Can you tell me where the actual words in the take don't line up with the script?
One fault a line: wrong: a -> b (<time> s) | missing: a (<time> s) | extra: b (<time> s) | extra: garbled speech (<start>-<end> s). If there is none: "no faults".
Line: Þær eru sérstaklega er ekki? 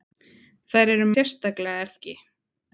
no faults